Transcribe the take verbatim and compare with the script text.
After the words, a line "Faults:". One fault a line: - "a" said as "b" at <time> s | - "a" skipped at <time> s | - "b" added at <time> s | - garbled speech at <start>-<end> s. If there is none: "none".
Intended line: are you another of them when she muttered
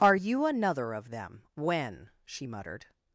are you another of them when she muttered
Faults:
none